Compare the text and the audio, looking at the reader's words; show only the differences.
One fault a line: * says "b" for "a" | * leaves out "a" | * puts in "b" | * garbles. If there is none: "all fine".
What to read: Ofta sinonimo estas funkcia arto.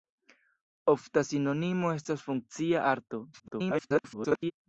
* garbles